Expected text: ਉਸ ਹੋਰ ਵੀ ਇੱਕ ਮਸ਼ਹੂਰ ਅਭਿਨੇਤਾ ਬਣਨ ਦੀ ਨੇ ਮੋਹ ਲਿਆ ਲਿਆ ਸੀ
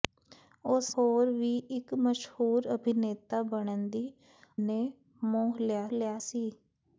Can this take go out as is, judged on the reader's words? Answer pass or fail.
pass